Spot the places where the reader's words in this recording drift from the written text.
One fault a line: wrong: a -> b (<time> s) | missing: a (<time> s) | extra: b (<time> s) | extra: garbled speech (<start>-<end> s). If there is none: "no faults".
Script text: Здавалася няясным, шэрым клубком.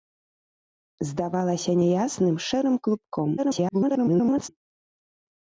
extra: garbled speech (3.4-4.5 s)